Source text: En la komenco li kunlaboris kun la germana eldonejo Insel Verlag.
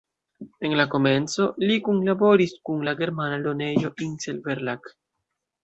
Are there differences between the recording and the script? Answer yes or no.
no